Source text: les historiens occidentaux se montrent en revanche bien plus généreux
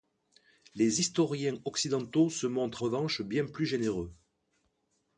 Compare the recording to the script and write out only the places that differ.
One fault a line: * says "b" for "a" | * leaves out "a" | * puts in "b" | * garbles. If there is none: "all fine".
* leaves out "en"